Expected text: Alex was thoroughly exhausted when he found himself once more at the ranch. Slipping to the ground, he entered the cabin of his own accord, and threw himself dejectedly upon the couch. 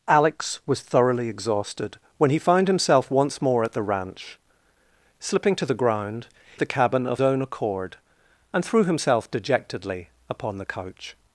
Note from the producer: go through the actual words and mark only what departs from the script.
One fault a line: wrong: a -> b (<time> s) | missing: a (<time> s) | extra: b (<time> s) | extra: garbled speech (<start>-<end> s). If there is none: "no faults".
missing: he entered (6.3 s)
missing: his (7.2 s)